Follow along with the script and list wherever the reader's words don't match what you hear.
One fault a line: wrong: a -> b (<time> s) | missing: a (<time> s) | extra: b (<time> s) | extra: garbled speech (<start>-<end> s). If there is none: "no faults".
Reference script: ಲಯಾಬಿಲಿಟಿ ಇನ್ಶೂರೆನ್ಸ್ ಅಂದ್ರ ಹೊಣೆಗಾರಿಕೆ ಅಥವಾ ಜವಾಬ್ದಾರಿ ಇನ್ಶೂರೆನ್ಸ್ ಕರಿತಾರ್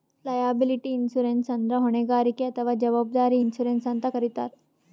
extra: ಅಂತ್ (3.9 s)